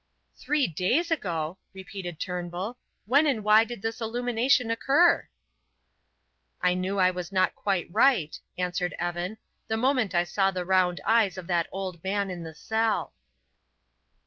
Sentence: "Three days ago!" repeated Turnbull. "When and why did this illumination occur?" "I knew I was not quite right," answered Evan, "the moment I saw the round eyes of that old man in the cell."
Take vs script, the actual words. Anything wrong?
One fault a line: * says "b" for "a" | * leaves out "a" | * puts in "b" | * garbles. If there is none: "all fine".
all fine